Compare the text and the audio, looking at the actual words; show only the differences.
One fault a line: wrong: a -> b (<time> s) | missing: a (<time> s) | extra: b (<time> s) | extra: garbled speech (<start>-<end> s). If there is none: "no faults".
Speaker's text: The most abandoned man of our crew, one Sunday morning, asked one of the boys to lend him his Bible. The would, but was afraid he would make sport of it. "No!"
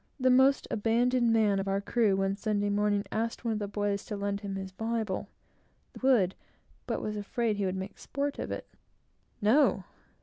no faults